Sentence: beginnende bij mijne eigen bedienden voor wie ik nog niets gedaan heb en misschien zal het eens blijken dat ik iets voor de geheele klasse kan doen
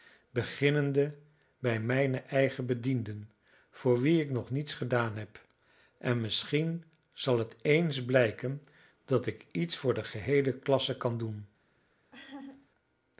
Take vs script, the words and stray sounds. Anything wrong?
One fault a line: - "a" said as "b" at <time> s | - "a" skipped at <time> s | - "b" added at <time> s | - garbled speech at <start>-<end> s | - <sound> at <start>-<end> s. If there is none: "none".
- laugh at 12.1-12.7 s